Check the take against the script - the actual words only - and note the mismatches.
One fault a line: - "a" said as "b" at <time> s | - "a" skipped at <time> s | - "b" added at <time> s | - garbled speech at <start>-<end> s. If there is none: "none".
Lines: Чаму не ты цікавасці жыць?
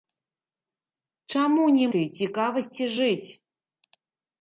none